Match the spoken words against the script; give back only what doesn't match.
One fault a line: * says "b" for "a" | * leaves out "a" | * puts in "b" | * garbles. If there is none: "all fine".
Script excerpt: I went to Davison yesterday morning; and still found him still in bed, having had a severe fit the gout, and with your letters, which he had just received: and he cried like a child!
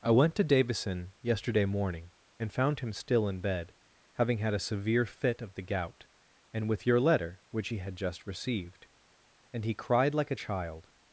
* leaves out "still"
* puts in "of"
* says "letter" for "letters"